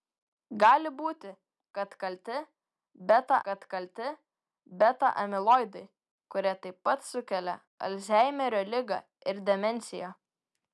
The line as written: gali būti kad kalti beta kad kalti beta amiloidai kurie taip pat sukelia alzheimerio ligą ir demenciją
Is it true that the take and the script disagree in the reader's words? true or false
false